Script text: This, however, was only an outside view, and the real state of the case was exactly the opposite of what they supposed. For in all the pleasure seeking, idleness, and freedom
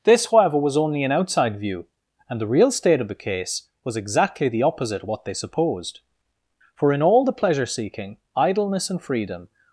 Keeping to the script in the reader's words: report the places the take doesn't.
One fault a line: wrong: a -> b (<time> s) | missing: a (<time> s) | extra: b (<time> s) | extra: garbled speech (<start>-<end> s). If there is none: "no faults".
no faults